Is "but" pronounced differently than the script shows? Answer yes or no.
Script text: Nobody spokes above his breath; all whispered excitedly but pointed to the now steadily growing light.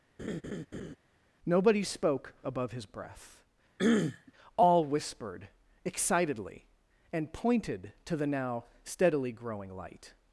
yes